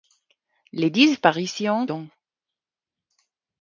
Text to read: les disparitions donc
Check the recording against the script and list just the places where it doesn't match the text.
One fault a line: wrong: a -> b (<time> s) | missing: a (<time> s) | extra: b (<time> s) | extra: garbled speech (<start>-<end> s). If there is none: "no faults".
no faults